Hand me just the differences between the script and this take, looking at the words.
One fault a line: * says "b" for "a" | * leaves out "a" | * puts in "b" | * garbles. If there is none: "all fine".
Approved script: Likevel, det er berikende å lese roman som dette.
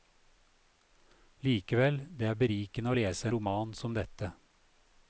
all fine